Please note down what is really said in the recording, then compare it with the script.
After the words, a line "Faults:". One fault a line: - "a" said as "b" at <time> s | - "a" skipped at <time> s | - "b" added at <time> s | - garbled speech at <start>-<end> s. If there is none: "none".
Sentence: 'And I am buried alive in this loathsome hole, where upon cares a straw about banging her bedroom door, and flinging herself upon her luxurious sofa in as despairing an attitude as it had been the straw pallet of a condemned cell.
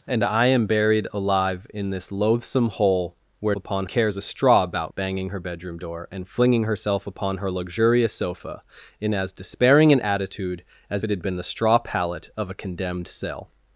'And I am buried alive in this loathsome hole, where upon cares a straw about banging her bedroom door, and flinging herself upon her luxurious sofa in as despairing an attitude as it had been the straw pallet of a condemned cell.
Faults:
none